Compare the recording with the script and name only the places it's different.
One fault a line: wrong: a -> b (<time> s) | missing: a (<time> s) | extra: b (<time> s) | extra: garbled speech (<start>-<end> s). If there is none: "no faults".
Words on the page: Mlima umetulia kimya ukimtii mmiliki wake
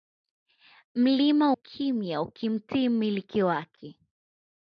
missing: umetulia (1.5 s)